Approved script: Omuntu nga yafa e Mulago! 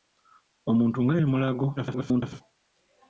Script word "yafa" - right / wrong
wrong